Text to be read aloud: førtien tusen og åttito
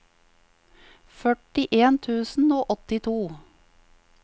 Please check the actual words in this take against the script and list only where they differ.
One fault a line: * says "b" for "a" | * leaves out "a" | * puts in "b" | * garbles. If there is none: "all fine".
all fine